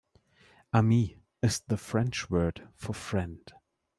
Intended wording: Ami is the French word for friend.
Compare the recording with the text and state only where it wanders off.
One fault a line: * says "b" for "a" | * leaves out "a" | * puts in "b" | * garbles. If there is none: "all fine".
all fine